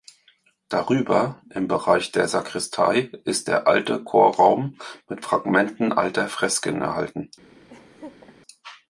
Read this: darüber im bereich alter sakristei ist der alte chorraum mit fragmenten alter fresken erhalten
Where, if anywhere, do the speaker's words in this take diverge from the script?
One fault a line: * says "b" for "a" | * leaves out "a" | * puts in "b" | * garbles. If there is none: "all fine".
* says "der" for "alter"